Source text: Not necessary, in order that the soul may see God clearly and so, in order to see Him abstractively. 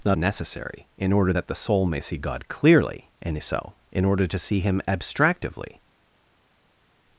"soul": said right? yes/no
yes